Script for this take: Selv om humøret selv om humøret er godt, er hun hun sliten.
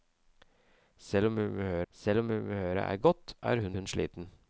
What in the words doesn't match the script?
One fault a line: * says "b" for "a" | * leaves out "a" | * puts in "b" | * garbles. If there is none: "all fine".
all fine